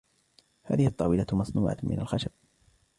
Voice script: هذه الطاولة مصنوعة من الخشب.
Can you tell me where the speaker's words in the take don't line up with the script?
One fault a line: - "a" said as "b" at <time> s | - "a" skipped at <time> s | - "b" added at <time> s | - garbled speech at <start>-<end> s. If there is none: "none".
none